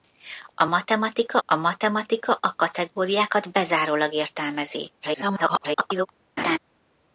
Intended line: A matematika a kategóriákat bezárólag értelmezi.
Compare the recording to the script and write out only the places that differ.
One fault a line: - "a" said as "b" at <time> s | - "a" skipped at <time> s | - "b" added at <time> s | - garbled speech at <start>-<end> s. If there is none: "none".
- "matematika a" added at 1.6 s
- garbled speech at 5.0-6.1 s